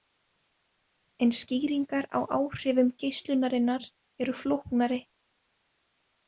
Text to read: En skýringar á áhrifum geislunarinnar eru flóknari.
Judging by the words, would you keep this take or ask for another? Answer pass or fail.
pass